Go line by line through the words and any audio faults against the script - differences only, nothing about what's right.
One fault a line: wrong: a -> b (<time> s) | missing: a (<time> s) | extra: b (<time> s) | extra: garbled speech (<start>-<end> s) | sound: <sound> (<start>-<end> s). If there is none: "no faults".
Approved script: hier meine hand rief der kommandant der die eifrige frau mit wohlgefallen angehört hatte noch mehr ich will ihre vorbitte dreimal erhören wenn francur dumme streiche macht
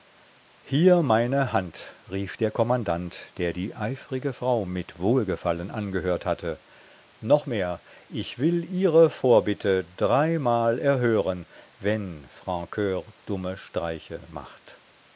no faults